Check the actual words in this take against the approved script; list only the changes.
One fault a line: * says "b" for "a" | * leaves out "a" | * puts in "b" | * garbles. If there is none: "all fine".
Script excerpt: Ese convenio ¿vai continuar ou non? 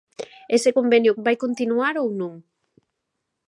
all fine